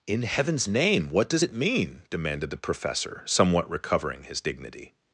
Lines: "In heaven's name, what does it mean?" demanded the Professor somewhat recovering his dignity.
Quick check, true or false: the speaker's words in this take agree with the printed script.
true